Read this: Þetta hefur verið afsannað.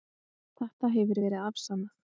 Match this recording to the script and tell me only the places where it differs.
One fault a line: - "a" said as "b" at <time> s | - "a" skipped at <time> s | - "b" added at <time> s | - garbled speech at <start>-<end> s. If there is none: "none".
none